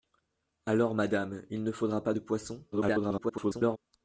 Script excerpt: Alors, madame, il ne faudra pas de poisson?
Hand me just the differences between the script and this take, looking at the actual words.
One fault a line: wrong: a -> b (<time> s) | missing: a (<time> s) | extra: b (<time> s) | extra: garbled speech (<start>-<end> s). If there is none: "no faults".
extra: garbled speech (2.7-3.8 s)